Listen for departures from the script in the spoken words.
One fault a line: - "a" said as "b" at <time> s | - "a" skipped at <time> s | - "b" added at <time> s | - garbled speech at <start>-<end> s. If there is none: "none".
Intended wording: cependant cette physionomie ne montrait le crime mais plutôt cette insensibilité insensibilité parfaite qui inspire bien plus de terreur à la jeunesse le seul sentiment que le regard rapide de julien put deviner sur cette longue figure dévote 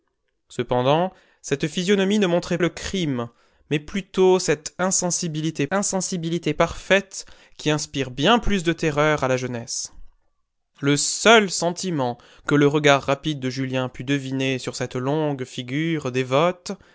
none